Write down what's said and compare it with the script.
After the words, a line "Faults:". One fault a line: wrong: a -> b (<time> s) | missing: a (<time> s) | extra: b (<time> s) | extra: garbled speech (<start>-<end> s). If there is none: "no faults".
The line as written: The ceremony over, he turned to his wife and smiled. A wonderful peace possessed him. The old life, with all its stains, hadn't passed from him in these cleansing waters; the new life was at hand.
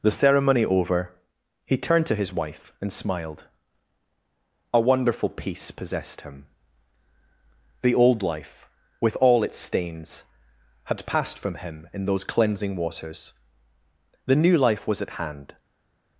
The ceremony over, he turned to his wife and smiled. A wonderful peace possessed him. The old life, with all its stains, had passed from him in those cleansing waters; the new life was at hand.
Faults:
wrong: hadn't -> had (10.8 s)
wrong: these -> those (12.1 s)